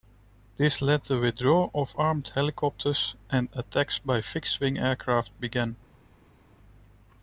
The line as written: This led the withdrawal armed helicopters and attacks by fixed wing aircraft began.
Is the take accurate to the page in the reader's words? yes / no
no